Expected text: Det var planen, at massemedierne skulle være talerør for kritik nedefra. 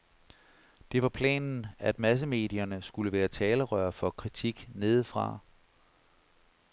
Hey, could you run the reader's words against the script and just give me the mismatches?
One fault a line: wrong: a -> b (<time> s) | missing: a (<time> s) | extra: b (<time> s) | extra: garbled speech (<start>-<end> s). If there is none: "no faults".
no faults